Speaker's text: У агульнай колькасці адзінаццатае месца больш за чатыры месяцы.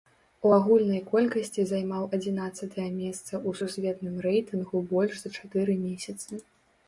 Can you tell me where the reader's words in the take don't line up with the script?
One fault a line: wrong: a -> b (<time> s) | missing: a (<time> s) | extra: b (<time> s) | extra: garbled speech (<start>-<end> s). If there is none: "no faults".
extra: займаў (1.7 s)
extra: ў сусветным рэйтынгу (3.5 s)